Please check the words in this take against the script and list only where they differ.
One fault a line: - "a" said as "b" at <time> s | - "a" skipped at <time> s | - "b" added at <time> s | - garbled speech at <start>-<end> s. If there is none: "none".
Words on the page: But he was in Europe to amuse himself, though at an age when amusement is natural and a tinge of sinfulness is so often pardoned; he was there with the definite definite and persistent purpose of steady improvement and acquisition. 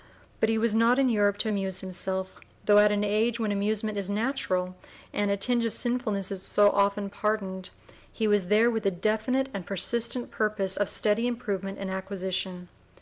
- "not" added at 0.7 s
- "definite" skipped at 9.5 s